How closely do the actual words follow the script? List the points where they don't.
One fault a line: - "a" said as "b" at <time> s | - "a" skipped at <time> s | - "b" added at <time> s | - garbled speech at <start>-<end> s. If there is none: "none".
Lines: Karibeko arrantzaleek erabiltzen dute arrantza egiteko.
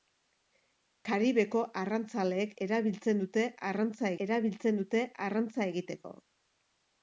- "erabiltzen dute arrantza" added at 4.3 s